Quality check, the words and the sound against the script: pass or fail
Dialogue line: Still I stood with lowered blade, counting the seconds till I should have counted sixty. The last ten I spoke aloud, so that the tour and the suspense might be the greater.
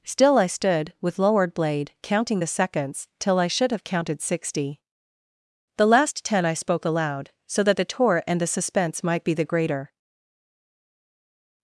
pass